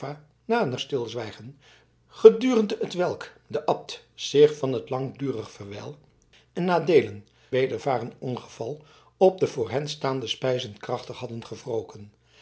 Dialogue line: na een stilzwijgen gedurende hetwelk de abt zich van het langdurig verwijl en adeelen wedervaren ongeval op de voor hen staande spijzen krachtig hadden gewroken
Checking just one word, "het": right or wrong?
right